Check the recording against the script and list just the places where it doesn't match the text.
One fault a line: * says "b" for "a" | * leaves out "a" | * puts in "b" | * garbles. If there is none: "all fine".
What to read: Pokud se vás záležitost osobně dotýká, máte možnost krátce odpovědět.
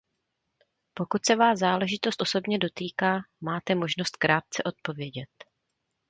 all fine